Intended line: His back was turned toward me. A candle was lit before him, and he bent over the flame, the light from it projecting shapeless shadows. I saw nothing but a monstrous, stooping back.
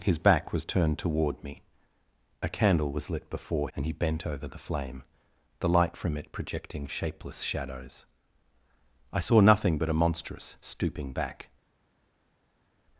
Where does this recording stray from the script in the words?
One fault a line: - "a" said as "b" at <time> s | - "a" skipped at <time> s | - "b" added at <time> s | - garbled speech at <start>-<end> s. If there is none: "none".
- "him" skipped at 3.7 s